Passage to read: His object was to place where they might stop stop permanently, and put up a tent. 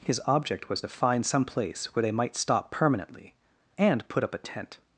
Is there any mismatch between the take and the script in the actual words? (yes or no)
yes